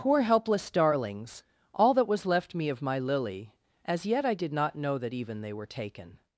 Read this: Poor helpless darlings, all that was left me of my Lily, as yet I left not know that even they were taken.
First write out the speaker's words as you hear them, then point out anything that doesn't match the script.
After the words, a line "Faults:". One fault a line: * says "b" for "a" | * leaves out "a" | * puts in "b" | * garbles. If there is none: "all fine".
Poor helpless darlings, all that was left me of my Lily, as yet I did not know that even they were taken.
Faults:
* says "did" for "left"